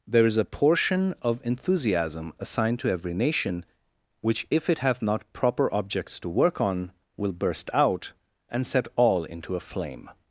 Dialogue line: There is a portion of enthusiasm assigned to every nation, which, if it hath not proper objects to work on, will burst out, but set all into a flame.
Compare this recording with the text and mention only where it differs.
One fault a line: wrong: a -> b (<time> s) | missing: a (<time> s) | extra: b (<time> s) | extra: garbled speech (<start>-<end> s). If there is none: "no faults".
wrong: but -> and (8.5 s)